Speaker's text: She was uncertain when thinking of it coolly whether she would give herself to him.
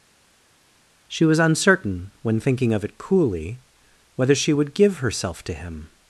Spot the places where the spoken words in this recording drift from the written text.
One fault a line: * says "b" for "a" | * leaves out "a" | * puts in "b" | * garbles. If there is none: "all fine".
all fine